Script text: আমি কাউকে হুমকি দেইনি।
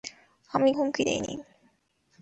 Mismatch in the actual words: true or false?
true